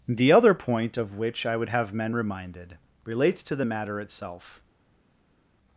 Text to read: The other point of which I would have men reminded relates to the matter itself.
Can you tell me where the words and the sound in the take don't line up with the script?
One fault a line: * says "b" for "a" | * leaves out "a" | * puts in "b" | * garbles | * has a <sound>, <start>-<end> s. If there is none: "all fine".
all fine